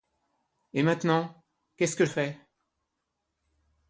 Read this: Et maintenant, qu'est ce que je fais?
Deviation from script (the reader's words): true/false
true